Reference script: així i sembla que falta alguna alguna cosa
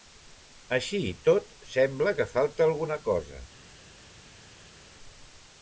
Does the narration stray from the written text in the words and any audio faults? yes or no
yes